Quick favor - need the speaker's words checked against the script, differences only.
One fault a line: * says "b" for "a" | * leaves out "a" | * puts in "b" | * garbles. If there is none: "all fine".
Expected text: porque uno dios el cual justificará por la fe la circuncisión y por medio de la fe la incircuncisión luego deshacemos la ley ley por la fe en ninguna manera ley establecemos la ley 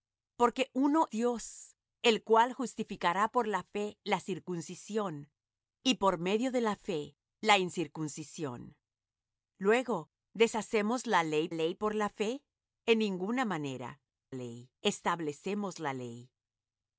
all fine